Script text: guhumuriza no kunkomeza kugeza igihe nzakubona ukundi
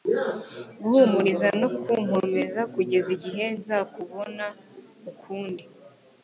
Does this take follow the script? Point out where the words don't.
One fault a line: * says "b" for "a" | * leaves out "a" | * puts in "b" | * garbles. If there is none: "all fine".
all fine